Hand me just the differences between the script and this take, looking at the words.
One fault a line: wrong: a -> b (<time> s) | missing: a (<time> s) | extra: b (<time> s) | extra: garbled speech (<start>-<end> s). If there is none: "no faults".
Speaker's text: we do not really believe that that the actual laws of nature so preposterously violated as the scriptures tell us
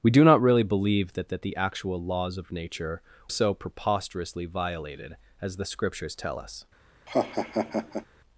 no faults